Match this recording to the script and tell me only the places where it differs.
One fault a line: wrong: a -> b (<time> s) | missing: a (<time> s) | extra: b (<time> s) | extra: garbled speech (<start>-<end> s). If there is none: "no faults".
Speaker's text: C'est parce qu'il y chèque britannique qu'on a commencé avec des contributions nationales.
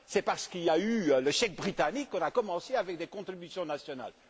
extra: a eu le (0.7 s)